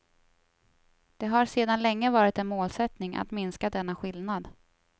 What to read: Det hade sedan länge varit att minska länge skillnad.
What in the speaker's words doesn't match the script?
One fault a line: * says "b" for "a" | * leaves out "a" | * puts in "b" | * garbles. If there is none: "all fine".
* says "har" for "hade"
* puts in "en målsättning"
* says "denna" for "länge"